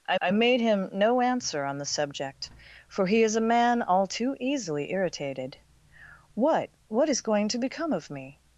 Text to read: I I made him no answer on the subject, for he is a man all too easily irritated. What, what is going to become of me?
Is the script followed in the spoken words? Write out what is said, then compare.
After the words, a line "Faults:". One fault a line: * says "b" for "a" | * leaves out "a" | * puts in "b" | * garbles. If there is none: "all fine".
I I made him no answer on the subject, for he is a man all too easily irritated. What, what is going to become of me?
Faults:
all fine